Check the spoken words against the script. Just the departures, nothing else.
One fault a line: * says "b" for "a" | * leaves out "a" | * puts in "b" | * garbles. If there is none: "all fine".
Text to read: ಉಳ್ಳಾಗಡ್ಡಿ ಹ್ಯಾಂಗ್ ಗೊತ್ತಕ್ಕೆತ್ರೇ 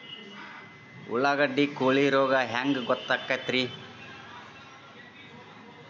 * puts in "ಕೋಳಿ ರೋಗ"